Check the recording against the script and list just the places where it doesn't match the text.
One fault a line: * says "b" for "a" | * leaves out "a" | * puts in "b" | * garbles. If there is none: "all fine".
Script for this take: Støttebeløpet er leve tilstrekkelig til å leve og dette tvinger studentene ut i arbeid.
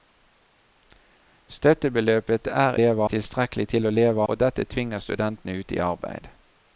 all fine